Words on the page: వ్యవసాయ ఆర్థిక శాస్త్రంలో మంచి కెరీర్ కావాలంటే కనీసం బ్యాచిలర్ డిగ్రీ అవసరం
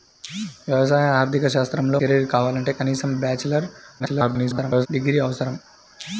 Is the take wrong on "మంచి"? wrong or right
wrong